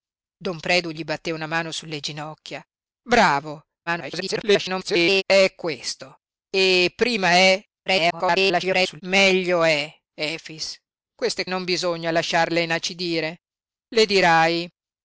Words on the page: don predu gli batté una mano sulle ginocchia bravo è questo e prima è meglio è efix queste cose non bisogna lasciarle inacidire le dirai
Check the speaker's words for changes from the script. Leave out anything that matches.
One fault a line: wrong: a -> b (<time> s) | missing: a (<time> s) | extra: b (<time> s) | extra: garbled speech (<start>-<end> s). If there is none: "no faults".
extra: garbled speech (3.9-5.2 s)
extra: garbled speech (7.9-9.0 s)
missing: cose (11.4 s)